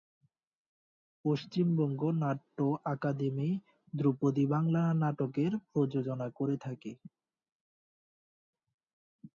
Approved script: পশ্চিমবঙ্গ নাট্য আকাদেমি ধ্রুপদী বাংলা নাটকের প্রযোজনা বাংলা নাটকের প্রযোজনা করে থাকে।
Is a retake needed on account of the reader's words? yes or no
yes